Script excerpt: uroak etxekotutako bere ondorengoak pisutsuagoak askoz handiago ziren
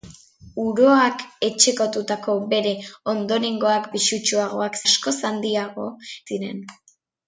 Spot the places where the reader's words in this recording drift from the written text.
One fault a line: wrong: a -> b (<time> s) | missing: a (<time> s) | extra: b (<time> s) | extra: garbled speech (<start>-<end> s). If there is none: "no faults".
no faults